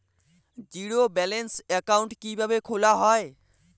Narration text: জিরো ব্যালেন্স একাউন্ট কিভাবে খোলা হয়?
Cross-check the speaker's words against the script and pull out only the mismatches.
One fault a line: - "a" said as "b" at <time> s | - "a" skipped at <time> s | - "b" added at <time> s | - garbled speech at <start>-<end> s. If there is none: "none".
none